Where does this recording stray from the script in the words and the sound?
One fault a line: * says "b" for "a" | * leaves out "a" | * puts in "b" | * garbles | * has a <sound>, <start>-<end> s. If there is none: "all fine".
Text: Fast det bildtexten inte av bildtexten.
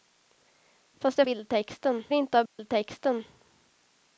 * has a dropout, 2.5-2.6 s